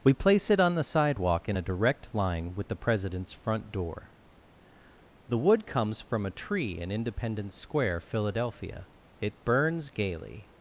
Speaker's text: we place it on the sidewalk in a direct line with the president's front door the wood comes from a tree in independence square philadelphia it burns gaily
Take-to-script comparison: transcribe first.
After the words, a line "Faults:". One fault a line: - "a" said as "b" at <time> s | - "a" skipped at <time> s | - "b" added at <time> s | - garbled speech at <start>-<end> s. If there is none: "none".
we place it on the sidewalk in a direct line with the president's front door the wood comes from a tree in independence square philadelphia it burns gaily
Faults:
none